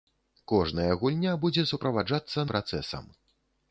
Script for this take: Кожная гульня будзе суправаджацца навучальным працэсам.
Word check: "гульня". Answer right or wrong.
right